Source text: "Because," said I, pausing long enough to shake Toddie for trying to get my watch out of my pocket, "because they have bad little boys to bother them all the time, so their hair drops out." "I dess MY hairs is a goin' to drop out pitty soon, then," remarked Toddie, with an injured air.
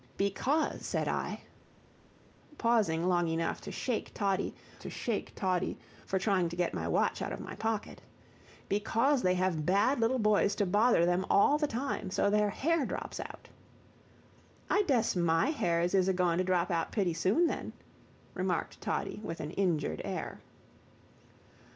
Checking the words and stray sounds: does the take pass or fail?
fail